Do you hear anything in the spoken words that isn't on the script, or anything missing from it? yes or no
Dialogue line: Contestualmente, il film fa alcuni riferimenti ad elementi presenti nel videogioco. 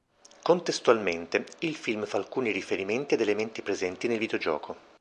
no